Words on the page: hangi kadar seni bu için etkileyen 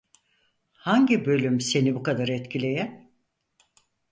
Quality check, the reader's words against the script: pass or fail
fail